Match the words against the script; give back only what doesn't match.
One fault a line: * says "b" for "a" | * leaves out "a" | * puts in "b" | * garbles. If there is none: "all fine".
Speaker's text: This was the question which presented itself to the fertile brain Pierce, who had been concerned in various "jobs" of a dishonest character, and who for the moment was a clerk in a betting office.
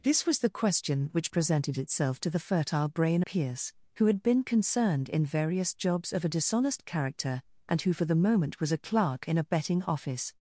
all fine